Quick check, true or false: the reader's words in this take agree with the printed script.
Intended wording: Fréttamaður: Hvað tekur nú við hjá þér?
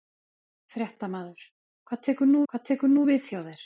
false